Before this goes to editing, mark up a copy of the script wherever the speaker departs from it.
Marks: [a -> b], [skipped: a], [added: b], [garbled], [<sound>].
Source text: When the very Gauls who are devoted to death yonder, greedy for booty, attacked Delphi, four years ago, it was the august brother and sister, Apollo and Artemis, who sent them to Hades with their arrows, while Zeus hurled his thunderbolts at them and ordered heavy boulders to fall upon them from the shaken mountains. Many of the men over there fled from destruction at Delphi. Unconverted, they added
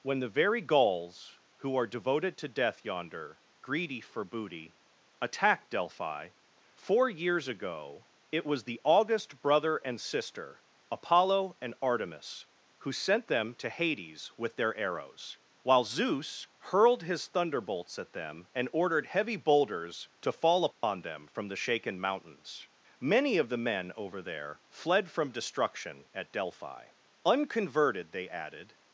When the very Gauls who are devoted to death yonder, greedy for booty, attacked Delphi, four years ago, it was the august brother and sister, Apollo and Artemis, who sent them to Hades with their arrows, while Zeus hurled his thunderbolts at them and ordered heavy boulders to fall upon [dropout] them from the shaken mountains. Many of the men over there fled from destruction at Delphi. Unconverted, they added